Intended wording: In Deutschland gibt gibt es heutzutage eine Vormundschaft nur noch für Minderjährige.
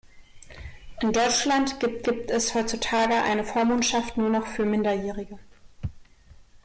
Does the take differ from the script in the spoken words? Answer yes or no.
no